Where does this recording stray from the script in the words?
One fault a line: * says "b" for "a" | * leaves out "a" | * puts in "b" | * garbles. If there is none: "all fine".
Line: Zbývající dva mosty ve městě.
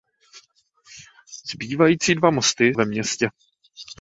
all fine